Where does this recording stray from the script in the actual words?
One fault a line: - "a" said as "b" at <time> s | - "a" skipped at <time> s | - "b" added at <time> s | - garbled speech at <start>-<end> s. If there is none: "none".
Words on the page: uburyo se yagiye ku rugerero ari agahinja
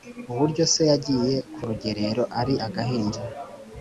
none